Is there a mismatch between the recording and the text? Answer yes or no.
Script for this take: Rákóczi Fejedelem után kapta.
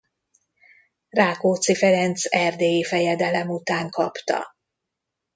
yes